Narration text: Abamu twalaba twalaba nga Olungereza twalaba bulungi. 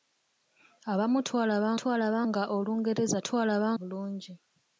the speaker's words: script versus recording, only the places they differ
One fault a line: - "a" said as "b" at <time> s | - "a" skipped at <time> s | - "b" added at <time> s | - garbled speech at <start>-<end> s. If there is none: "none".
none